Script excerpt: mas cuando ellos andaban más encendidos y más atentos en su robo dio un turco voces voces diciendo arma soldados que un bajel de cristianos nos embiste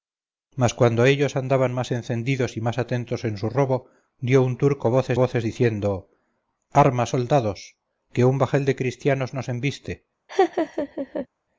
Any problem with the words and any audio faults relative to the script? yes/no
yes